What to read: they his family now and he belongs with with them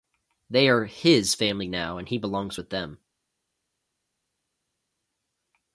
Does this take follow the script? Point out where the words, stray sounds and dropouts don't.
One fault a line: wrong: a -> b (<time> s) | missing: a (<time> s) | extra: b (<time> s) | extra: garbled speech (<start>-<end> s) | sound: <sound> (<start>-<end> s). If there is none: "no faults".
extra: are (0.7 s)
missing: with (2.7 s)